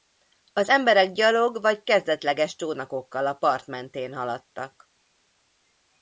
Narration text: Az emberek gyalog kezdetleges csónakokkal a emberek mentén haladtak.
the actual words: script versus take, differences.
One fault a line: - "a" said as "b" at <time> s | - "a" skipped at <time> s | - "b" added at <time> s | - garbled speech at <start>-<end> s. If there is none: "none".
- "vagy" added at 1.6 s
- "emberek" said as "part" at 3.3 s